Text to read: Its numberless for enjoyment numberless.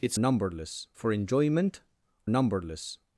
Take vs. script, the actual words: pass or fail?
pass